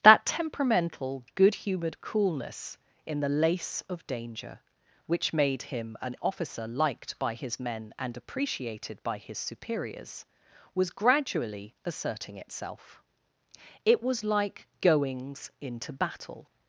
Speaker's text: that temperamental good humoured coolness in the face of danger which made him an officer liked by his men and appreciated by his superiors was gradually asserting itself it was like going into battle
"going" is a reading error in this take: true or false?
true